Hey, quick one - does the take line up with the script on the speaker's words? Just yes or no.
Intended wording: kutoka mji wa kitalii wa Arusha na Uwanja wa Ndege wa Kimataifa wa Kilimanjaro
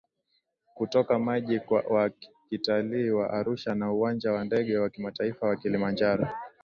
yes